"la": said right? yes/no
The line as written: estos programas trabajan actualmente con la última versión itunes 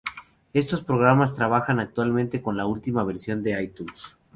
yes